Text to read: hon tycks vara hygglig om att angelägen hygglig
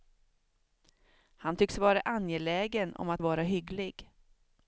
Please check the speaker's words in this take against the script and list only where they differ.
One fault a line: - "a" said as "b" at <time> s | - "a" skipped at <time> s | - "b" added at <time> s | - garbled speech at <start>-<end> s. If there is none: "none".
- "hon" said as "han" at 1.4 s
- "hygglig" said as "angelägen" at 2.0 s
- "angelägen" said as "vara" at 3.2 s